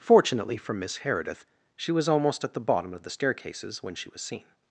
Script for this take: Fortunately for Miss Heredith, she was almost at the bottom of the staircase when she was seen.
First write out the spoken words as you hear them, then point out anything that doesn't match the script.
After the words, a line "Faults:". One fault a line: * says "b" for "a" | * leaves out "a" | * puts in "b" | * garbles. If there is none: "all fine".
Fortunately for Miss Heredith, she was almost at the bottom of the staircases when she was seen.
Faults:
* says "staircases" for "staircase"